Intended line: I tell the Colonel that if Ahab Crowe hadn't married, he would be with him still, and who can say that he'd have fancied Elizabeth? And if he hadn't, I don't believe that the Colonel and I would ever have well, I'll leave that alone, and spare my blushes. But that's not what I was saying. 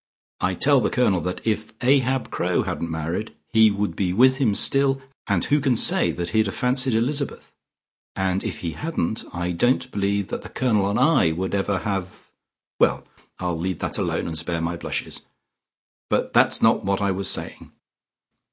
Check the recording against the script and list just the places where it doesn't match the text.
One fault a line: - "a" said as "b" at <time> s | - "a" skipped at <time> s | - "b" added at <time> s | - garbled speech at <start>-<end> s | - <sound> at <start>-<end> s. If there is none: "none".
none